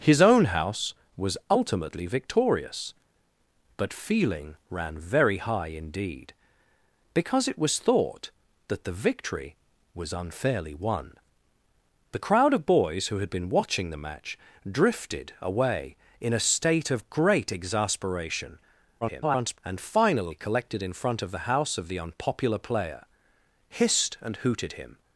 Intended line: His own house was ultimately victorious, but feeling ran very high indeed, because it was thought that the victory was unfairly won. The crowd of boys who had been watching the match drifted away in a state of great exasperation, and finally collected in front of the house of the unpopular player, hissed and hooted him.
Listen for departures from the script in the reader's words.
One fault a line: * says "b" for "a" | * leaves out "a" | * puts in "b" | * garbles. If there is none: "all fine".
* garbles